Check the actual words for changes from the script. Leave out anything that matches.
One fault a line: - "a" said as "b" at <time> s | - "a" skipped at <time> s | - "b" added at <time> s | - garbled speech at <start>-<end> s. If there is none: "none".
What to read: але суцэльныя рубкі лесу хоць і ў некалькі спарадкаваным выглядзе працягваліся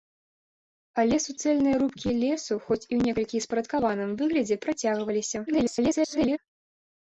- garbled speech at 5.5-6.4 s